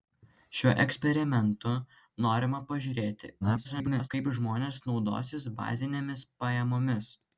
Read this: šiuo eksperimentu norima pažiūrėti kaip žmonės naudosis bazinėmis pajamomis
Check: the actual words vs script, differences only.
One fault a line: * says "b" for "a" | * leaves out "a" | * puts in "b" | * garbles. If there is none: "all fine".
* garbles